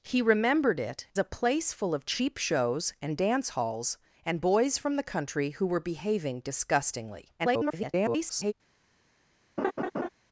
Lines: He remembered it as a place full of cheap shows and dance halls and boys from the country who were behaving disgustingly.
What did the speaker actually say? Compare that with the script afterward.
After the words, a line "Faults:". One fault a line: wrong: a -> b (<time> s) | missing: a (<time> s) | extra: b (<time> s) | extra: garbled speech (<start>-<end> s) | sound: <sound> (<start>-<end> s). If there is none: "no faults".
He remembered it a place full of cheap shows and dance halls and boys from the country who were behaving disgustingly. [garbled]
Faults:
missing: as (1.1 s)
extra: garbled speech (7.4-8.5 s)
sound: laugh (9.6-10.1 s)